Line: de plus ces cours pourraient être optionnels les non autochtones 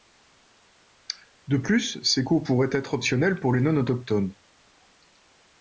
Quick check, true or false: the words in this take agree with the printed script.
false